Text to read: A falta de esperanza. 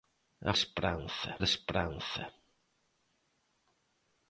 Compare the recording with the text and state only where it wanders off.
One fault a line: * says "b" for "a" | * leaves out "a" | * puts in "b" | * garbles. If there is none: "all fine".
* says "esperanza" for "falta"